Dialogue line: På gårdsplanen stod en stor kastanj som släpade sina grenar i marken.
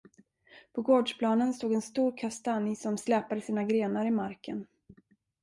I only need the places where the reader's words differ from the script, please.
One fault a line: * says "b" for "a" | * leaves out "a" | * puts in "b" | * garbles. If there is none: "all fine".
all fine